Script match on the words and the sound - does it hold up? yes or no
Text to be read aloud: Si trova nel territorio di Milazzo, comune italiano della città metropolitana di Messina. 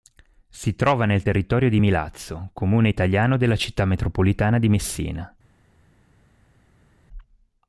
yes